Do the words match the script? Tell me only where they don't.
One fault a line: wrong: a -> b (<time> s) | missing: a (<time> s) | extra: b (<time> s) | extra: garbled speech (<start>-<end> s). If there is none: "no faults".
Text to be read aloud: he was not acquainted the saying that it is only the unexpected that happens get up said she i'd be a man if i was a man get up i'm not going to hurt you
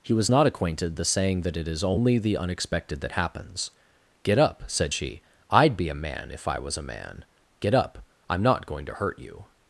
no faults